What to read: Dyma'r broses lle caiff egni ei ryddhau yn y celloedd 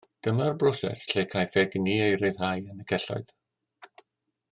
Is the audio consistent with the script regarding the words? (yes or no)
yes